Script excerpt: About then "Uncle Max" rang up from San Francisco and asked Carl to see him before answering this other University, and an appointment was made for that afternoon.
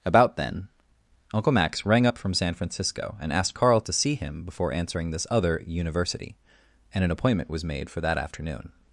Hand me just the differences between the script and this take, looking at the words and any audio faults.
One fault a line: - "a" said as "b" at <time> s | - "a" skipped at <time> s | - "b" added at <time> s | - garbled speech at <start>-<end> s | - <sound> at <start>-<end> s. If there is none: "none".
none